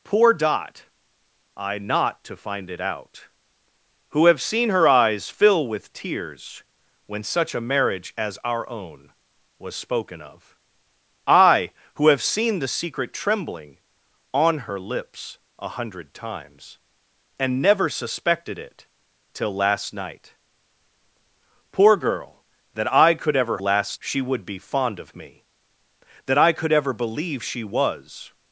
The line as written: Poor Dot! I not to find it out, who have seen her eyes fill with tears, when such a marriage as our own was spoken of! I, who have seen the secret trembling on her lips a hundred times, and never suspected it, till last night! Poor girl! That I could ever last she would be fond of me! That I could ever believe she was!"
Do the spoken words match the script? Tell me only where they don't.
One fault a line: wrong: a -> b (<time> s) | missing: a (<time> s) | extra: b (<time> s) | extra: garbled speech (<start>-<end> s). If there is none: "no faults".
no faults